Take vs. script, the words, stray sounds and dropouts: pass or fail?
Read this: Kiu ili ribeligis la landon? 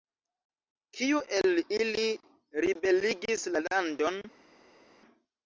fail